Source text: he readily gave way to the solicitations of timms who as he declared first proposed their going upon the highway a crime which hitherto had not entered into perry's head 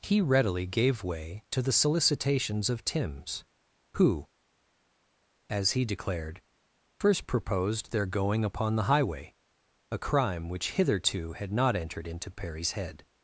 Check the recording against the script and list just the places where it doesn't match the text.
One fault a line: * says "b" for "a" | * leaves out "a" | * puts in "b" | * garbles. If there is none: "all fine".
all fine